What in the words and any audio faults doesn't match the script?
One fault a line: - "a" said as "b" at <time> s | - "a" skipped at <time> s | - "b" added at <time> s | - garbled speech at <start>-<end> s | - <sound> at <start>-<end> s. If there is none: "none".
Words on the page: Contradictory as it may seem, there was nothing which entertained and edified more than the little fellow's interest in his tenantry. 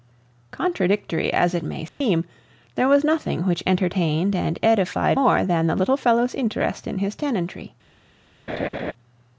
- dropout at 1.9-2.0 s
- laugh at 8.5-8.9 s